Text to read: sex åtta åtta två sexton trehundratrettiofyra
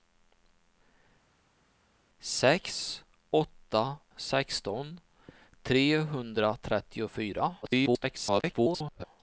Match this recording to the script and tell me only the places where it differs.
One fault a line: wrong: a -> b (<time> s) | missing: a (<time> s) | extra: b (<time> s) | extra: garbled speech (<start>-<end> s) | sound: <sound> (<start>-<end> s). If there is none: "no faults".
missing: åtta två (4.0 s)
extra: garbled speech (7.6-9.0 s)